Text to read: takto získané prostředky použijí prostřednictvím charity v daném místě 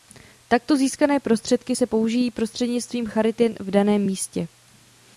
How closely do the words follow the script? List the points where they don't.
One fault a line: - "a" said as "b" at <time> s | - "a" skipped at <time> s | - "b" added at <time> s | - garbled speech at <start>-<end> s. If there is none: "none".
- "se" added at 1.7 s